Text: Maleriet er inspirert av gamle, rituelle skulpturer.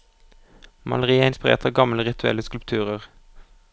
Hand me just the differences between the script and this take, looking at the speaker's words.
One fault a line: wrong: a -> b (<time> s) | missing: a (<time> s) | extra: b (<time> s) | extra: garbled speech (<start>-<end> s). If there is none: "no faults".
no faults